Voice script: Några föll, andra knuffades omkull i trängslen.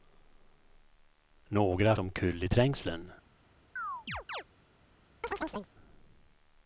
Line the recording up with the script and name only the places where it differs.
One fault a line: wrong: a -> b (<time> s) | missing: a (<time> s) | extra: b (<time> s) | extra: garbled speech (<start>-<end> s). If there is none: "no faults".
missing: föll andra knuffades (1.9 s)